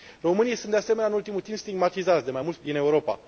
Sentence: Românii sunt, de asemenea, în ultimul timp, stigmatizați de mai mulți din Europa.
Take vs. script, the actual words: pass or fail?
pass